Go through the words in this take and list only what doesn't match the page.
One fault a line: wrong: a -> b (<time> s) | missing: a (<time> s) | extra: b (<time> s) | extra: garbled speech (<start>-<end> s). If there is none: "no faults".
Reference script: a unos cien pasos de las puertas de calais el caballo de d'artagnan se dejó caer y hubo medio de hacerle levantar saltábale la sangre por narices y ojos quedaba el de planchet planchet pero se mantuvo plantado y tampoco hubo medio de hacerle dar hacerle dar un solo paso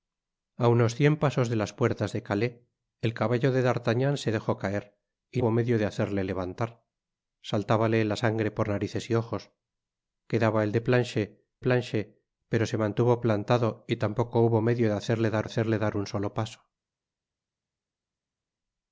no faults